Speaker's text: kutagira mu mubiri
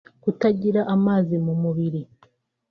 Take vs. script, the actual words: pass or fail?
fail